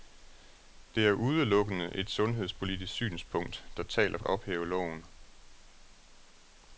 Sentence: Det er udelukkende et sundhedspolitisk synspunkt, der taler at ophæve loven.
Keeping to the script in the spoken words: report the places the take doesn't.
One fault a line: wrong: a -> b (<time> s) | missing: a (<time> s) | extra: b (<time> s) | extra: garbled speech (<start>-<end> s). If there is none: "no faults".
no faults